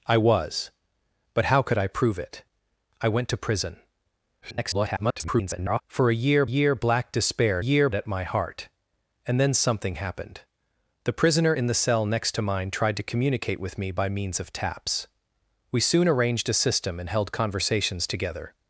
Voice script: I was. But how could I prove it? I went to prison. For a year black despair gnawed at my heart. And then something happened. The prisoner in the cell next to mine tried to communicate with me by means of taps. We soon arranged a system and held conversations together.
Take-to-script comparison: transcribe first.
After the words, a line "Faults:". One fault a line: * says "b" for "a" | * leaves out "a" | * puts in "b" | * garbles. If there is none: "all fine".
I was. But how could I prove it? I went to prison. [garbled] For a year year black despair year at my heart. And then something happened. The prisoner in the cell next to mine tried to communicate with me by means of taps. We soon arranged a system and held conversations together.
Faults:
* garbles
* puts in "year"
* says "year" for "gnawed"